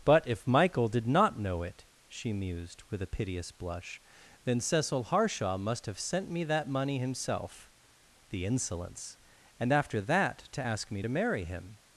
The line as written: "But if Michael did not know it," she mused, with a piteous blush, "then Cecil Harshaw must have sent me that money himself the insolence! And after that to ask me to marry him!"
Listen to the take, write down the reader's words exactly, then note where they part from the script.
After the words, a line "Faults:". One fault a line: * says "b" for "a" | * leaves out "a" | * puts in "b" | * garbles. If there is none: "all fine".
"But if Michael did not know it," she mused, with a piteous blush, "then Cecil Harshaw must have sent me that money himself the insolence! And after that to ask me to marry him!"
Faults:
all fine